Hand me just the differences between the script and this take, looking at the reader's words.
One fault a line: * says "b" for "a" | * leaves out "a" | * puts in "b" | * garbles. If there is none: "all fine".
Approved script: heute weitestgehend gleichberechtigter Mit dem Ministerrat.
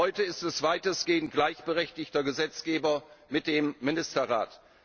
* puts in "ist es"
* puts in "Gesetzgeber"